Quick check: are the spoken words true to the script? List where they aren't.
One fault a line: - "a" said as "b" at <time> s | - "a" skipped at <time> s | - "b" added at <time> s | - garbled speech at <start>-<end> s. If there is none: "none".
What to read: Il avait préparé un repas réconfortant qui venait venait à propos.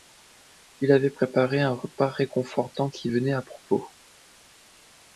- "venait" skipped at 3.3 s